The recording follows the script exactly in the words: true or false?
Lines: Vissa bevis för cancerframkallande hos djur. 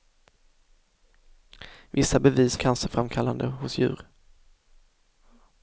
false